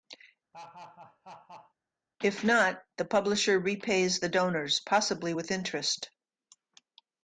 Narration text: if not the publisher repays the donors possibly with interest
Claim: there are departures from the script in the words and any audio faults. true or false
true